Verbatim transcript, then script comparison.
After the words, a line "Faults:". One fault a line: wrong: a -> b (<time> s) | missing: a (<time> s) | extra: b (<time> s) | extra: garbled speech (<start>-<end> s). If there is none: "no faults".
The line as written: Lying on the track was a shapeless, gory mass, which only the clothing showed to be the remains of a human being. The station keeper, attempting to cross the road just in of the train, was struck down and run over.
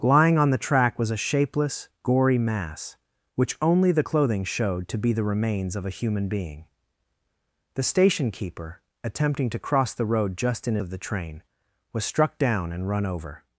Lying on the track was a shapeless, gory mass, which only the clothing showed to be the remains of a human being. The station keeper, attempting to cross the road just in of the train, was struck down and run over.
Faults:
no faults